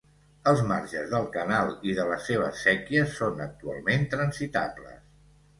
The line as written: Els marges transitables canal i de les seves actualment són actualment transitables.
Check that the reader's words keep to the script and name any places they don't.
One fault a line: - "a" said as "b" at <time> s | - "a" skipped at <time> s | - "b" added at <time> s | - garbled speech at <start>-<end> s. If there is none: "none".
- "transitables" said as "del" at 1.1 s
- "actualment" said as "séquies" at 2.7 s